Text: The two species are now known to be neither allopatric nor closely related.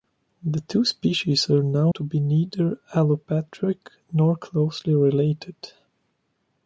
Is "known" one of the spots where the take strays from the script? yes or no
yes